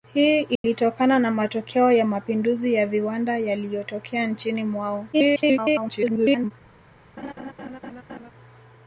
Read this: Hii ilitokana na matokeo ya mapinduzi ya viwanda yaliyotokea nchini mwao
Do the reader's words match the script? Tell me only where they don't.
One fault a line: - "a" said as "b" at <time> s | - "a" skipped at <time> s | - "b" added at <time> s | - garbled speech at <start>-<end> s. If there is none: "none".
- garbled speech at 5.1-6.5 s